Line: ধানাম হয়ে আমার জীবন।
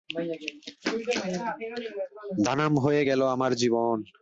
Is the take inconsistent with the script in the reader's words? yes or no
yes